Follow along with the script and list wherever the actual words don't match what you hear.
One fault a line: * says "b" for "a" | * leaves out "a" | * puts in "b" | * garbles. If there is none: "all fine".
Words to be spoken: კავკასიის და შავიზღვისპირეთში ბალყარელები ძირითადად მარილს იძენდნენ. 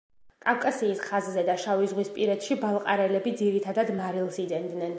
* puts in "ხაზზე"